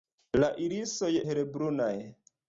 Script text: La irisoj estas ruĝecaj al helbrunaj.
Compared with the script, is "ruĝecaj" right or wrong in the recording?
wrong